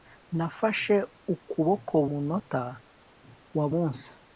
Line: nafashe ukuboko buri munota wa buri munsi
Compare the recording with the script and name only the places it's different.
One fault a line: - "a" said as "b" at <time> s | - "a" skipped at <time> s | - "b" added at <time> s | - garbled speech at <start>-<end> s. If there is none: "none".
- "buri" skipped at 1.9 s
- "buri" skipped at 3.6 s